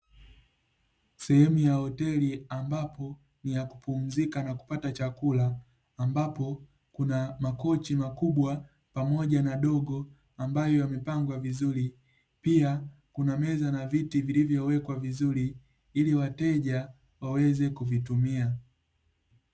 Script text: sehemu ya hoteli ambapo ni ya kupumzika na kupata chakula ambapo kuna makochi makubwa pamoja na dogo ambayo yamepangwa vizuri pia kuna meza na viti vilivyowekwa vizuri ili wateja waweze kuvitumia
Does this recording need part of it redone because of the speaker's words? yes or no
no